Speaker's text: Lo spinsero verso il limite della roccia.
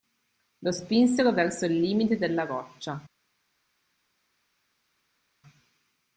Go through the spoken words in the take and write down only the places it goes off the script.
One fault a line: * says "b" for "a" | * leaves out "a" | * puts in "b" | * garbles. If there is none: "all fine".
all fine